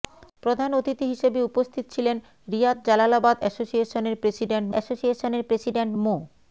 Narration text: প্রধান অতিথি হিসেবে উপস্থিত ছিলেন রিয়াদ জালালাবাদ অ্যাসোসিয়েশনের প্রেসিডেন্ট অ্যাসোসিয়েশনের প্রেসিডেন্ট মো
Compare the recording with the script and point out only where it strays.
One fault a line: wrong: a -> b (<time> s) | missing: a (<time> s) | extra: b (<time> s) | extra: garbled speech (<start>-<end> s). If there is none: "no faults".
no faults